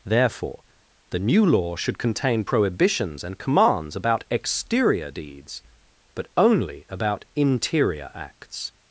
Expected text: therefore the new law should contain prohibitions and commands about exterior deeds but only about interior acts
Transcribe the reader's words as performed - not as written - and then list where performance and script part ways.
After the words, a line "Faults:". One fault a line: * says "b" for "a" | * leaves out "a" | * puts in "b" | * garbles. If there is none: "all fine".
therefore the new law should contain prohibitions and commands about exterior deeds but only about interior acts
Faults:
all fine